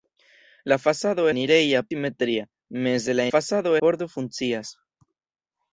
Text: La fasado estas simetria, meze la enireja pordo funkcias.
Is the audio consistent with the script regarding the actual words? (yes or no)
no